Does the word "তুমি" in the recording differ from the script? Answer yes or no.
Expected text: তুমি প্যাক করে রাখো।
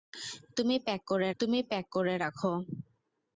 no